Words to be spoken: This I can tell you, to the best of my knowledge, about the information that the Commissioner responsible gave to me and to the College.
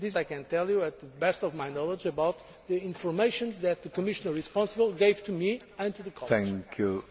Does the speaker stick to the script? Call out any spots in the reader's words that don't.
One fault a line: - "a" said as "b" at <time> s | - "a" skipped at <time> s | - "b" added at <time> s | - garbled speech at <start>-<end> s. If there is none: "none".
none